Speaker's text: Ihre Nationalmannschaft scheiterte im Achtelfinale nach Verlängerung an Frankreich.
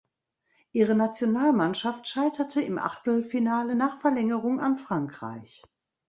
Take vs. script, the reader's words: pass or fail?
pass